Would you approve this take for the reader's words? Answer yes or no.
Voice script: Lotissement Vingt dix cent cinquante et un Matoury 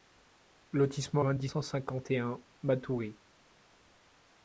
yes